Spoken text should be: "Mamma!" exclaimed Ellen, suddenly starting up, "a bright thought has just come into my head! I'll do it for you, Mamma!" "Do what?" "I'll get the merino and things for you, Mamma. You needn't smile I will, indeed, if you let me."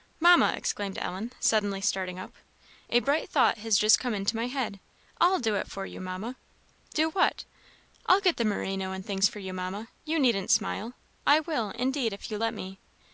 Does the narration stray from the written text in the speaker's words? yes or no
no